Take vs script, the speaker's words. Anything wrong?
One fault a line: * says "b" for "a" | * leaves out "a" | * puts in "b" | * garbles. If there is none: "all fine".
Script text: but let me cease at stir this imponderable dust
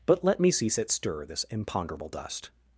all fine